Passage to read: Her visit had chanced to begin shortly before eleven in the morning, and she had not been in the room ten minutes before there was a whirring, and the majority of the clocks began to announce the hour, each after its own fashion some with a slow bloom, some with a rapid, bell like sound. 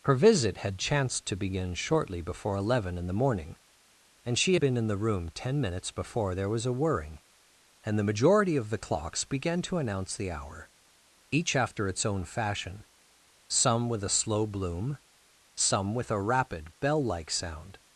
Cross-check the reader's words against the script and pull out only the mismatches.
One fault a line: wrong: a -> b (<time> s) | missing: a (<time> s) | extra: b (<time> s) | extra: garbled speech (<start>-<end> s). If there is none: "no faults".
missing: not (4.6 s)